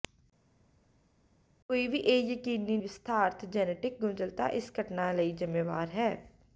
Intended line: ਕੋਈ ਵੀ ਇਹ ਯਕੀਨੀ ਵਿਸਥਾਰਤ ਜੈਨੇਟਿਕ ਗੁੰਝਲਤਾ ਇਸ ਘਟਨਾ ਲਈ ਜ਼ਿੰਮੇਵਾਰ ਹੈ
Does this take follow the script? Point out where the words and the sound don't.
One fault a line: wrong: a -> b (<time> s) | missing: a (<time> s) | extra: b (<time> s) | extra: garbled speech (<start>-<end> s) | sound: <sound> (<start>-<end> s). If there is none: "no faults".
no faults